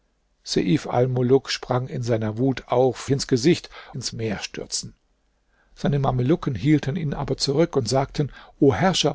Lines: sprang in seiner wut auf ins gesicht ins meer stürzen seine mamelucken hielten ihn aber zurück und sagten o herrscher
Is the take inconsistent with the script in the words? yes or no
no